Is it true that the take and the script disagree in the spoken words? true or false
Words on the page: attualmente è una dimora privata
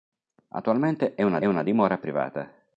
true